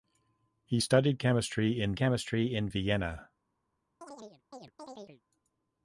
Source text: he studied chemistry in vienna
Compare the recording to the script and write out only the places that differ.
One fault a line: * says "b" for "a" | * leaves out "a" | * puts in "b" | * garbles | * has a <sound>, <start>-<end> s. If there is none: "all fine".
* puts in "chemistry in"
* has a chirp, 4.0-5.2 s